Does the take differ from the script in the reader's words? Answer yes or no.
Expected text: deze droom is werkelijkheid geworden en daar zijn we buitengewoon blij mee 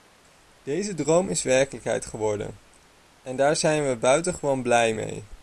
no